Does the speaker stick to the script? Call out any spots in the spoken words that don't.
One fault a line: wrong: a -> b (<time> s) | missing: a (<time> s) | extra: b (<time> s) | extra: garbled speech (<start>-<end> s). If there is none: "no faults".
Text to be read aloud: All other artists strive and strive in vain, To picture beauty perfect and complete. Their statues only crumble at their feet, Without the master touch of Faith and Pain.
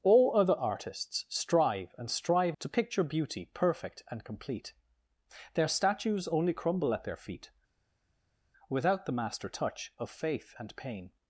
missing: in vain (2.6 s)